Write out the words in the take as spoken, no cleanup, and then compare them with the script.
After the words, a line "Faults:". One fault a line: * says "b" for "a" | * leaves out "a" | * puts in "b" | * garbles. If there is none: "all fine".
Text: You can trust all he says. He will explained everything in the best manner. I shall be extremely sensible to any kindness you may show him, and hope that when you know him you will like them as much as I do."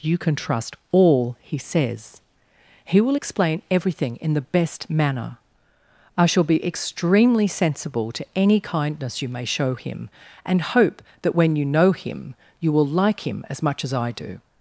You can trust all he says. He will explain everything in the best manner. I shall be extremely sensible to any kindness you may show him, and hope that when you know him you will like him as much as I do."
Faults:
* says "explain" for "explained"
* says "him" for "them"